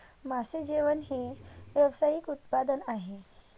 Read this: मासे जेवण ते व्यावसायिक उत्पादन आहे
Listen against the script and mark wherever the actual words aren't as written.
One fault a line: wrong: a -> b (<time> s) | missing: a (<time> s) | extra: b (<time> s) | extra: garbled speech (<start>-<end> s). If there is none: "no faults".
wrong: ते -> हे (1.0 s)